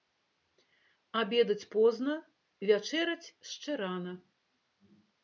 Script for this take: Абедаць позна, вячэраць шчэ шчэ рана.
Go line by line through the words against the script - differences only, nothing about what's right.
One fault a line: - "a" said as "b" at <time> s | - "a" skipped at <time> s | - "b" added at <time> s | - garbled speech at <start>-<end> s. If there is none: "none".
- "шчэ" skipped at 3.7 s